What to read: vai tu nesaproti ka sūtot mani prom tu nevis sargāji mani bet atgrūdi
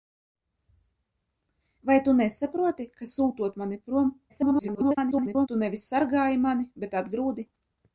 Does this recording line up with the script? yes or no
no